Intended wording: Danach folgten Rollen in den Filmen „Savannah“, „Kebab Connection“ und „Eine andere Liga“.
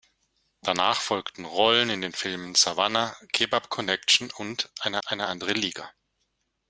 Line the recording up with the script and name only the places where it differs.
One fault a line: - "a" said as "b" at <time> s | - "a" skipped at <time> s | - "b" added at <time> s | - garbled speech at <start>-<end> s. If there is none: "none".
- "eine" added at 5.0 s